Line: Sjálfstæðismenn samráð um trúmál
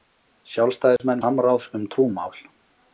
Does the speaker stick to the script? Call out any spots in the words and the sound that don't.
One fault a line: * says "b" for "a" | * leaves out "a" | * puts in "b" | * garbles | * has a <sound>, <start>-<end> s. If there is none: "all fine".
* has a dropout, 1.0-1.0 s